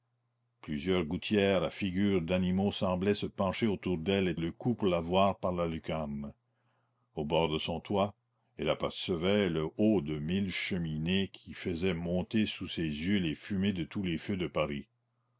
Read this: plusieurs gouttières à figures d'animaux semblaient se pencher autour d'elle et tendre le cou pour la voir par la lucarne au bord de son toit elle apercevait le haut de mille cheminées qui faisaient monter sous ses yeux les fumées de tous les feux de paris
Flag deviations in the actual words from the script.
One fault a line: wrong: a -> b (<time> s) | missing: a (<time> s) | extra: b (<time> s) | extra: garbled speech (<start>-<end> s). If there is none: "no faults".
missing: tendre (4.3 s)